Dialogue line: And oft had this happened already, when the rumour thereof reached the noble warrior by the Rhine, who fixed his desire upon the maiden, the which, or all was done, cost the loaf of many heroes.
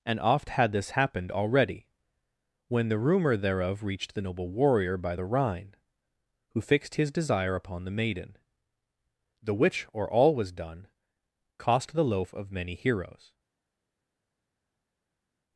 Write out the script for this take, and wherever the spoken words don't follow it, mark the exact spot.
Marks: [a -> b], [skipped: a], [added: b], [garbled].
And oft had this happened already, when the rumour thereof reached the noble warrior by the Rhine, who fixed his desire upon the maiden, the which, or all was done, cost the loaf of many heroes.